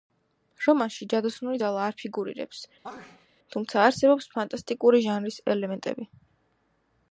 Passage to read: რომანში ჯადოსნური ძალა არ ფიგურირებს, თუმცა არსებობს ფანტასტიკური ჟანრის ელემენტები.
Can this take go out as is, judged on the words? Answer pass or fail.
pass